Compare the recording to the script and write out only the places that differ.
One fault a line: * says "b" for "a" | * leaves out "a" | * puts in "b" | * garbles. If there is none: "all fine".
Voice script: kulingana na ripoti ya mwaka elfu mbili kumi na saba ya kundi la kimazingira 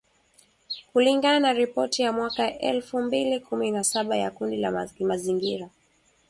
all fine